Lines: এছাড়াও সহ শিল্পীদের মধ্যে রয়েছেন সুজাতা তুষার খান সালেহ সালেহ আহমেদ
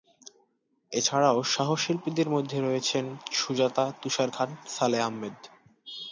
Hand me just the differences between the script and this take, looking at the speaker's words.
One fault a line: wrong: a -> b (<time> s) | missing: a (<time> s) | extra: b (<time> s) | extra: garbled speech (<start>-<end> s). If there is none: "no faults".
missing: সালেহ (5.0 s)